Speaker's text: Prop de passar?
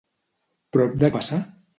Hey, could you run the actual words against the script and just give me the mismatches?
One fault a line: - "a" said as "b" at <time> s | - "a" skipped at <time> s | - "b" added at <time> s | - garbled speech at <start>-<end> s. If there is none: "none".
none